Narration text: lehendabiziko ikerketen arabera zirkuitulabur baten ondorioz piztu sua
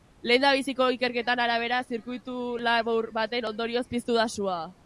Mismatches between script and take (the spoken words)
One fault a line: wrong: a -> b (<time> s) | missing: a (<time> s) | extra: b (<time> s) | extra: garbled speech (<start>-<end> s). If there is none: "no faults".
extra: da (4.1 s)